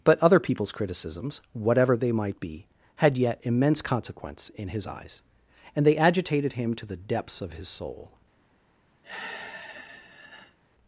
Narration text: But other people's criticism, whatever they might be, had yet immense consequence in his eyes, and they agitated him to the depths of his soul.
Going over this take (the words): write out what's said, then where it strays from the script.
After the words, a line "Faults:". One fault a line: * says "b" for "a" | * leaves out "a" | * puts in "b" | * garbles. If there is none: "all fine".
But other people's criticisms, whatever they might be, had yet immense consequence in his eyes, and they agitated him to the depths of his soul.
Faults:
* says "criticisms" for "criticism"